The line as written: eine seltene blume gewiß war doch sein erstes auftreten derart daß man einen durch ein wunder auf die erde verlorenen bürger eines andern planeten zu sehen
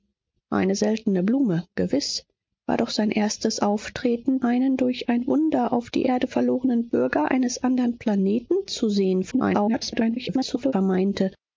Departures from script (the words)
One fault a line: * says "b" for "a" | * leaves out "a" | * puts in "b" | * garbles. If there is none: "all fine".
* leaves out "derart daß man"
* garbles